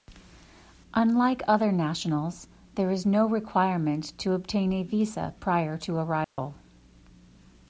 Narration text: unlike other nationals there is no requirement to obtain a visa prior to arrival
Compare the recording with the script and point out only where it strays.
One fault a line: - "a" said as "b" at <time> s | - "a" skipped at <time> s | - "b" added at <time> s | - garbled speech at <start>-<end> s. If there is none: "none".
none